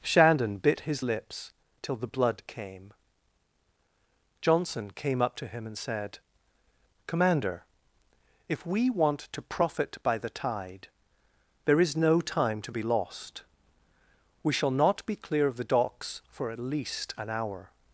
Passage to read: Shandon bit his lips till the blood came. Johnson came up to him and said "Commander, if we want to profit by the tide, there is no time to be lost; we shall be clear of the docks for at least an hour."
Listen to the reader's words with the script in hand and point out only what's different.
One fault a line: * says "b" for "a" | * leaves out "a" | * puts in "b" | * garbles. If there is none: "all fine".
* puts in "not"